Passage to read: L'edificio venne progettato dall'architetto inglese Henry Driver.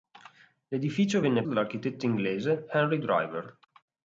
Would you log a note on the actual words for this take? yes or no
yes